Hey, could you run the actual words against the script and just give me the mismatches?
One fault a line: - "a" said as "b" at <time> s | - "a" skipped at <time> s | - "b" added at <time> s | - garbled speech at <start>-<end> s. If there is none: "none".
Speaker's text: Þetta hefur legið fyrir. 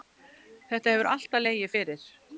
- "alltaf" added at 1.1 s